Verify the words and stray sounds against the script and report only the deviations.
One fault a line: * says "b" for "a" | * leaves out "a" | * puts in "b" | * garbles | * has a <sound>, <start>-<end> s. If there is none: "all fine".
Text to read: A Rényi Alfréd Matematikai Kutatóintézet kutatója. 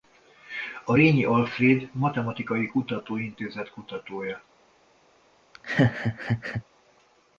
* has a laugh, 5.5-6.6 s